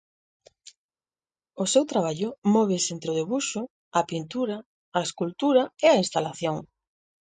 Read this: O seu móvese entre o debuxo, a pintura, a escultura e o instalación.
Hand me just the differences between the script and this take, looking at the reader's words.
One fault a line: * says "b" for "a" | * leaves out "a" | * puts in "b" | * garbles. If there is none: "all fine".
* puts in "traballo"
* says "a" for "o"